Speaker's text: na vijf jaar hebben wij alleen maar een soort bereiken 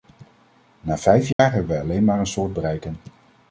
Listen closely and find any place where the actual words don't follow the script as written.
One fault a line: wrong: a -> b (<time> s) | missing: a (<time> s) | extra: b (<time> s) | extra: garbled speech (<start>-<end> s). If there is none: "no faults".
no faults